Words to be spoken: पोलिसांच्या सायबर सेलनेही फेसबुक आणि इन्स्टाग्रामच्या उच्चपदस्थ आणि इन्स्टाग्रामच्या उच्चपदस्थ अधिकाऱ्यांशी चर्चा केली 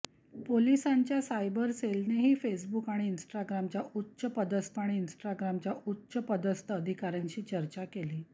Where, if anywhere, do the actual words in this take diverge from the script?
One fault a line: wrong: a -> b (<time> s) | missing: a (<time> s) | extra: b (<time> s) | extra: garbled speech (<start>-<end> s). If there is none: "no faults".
no faults